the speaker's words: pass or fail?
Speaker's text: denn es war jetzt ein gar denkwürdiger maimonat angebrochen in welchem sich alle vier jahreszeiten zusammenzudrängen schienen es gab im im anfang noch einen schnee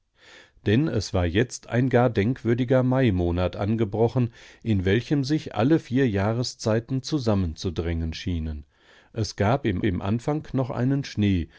pass